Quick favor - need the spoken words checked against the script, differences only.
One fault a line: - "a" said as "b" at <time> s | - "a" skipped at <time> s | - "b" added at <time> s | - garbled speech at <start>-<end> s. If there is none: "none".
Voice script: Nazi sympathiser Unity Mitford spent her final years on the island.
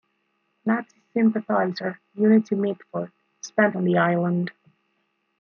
- "her final years" skipped at 3.8 s